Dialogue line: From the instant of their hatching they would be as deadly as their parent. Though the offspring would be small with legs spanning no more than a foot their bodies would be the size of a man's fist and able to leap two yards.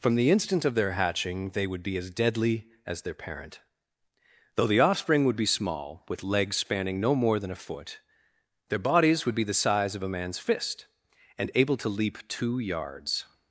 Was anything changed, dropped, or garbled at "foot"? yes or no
no